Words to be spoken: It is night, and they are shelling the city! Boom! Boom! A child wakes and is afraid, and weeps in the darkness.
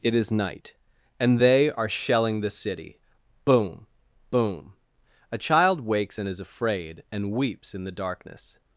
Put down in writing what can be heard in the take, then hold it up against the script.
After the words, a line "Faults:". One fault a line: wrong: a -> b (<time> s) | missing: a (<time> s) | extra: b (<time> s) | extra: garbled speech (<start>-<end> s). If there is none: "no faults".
It is night, and they are shelling the city! Boom! Boom! A child wakes and is afraid, and weeps in the darkness.
Faults:
no faults